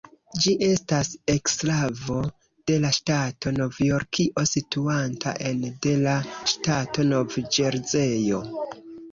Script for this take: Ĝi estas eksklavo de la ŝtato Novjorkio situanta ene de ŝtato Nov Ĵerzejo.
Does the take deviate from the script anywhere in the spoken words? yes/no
yes